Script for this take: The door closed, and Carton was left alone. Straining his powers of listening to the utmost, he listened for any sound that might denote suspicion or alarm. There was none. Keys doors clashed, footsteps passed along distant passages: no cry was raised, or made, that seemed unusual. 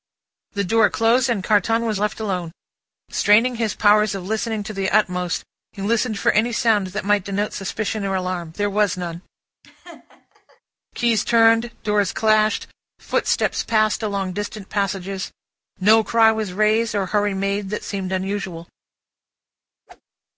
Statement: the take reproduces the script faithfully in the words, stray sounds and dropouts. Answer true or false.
false